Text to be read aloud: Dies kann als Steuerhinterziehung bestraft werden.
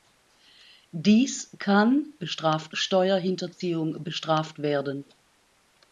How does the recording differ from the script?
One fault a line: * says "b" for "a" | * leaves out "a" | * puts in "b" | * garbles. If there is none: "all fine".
* says "bestraft" for "als"